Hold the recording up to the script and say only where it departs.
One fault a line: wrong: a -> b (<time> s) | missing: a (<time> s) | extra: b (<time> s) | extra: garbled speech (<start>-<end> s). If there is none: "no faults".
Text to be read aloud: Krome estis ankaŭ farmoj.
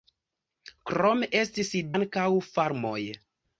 no faults